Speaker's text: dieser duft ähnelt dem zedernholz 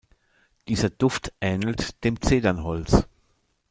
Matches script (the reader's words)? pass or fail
pass